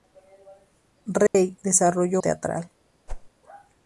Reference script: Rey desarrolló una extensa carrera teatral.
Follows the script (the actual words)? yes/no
no